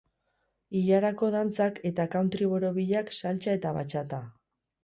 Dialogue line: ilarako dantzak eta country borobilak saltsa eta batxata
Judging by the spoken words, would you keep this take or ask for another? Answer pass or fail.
pass